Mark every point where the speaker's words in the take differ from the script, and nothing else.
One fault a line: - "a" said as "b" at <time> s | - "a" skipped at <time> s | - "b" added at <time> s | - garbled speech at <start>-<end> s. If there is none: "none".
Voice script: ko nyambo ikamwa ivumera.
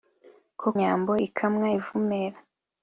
none